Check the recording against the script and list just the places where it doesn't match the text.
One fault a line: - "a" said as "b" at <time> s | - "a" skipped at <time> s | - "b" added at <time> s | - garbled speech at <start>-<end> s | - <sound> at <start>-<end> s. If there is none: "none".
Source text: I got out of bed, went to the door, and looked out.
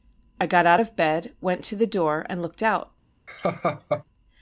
- laugh at 3.3-4.0 s